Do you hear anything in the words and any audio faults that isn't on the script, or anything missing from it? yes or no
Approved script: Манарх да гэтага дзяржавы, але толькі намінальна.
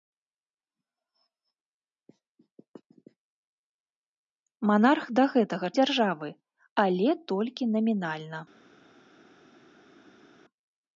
no